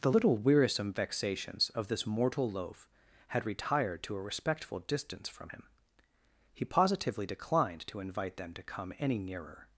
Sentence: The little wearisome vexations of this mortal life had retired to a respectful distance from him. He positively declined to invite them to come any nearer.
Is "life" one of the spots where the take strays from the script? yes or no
yes